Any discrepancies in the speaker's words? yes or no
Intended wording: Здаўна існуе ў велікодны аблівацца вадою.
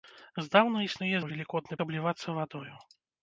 no